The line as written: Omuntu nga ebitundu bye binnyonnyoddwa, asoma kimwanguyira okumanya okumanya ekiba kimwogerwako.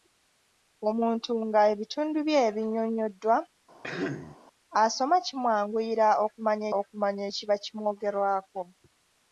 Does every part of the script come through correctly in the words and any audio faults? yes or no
no